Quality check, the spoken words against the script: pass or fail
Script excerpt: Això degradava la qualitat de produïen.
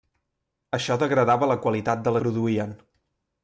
pass